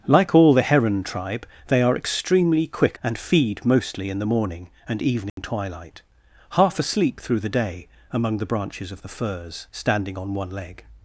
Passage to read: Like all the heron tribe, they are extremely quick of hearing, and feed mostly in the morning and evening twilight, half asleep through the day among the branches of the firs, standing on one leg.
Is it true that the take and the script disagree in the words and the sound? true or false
true